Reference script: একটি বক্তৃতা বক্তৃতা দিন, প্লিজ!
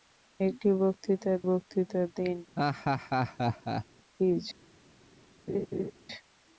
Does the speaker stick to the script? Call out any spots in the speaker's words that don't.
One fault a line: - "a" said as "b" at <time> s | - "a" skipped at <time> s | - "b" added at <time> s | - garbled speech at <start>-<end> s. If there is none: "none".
none